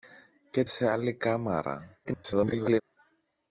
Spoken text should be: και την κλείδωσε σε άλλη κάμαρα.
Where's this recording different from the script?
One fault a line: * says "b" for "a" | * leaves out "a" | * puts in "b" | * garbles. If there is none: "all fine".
* leaves out "την κλείδωσε"
* garbles